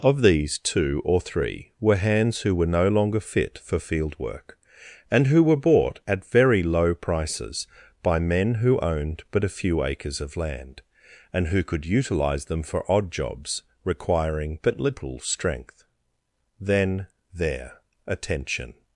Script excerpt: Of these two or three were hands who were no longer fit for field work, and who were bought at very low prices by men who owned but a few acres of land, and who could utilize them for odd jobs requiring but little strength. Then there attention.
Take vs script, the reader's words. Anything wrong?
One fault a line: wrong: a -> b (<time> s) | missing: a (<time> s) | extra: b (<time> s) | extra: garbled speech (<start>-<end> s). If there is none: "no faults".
no faults